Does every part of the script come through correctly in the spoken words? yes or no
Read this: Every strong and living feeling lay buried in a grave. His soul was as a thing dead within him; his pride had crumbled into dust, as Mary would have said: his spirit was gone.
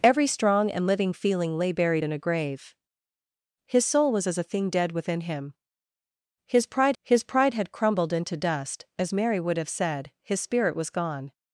no